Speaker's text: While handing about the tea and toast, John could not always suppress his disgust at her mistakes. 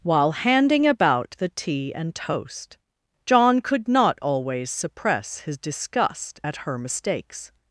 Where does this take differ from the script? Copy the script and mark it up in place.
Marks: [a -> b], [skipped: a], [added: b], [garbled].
While handing about the tea and toast, John could not always suppress his disgust at her mistakes.